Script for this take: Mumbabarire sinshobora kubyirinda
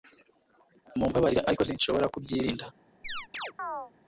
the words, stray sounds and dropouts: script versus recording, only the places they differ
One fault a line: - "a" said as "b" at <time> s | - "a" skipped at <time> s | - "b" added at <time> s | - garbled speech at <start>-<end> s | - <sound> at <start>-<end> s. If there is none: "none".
- "ariko" added at 1.5 s
- chirp at 3.0-3.9 s